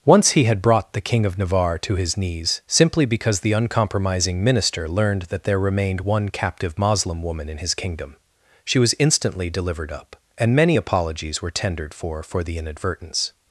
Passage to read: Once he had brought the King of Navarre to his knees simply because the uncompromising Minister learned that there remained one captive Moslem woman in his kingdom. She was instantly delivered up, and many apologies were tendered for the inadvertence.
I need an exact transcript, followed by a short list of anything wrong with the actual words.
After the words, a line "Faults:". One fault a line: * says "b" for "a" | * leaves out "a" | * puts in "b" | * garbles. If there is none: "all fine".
Once he had brought the King of Navarre to his knees simply because the uncompromising Minister learned that there remained one captive Moslem woman in his kingdom. She was instantly delivered up, and many apologies were tendered for for the inadvertence.
Faults:
* puts in "for"